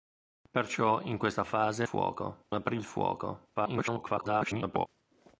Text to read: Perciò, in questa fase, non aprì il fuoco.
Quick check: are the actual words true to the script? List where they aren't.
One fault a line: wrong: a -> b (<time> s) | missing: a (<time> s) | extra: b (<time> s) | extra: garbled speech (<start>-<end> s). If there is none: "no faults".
wrong: non -> fuoco (1.8 s)
extra: garbled speech (3.5-4.9 s)